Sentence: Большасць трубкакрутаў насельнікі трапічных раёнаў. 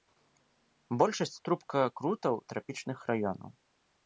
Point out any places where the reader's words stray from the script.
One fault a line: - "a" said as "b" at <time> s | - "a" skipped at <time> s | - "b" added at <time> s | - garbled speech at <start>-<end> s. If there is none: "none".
- "насельнікі" skipped at 2.4 s